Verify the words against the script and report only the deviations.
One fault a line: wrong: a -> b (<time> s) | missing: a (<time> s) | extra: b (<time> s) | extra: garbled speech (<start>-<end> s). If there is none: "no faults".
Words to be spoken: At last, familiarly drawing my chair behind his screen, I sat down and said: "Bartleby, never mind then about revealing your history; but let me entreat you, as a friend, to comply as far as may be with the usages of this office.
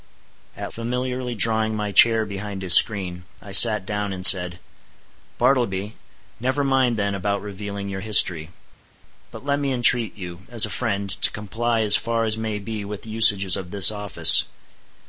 missing: last (0.7 s)